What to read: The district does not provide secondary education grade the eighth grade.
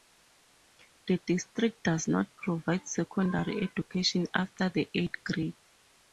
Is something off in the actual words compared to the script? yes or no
yes